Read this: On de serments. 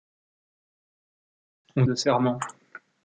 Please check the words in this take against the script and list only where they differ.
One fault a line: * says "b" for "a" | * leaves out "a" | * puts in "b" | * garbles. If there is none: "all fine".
all fine